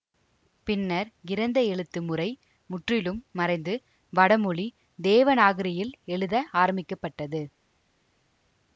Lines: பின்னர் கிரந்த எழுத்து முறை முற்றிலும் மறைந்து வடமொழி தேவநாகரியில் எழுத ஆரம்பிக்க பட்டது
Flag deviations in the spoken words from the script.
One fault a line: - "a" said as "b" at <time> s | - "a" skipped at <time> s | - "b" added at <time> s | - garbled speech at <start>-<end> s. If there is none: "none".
none